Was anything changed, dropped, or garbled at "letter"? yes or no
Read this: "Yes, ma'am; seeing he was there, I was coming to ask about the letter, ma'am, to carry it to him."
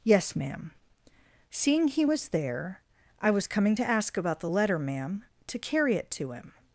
no